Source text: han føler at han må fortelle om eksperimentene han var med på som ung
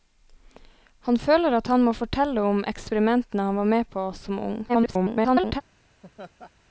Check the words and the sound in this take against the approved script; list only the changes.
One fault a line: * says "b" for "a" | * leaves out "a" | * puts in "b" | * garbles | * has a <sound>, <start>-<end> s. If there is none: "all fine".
* garbles
* has a laugh, 6.0-6.5 s